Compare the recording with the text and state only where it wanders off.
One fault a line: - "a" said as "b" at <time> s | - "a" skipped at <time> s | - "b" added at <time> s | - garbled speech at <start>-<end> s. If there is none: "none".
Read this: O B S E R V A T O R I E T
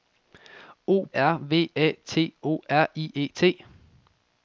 - "B S E" skipped at 1.1 s